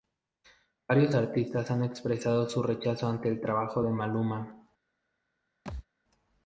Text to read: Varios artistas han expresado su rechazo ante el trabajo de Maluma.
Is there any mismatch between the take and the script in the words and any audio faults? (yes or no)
yes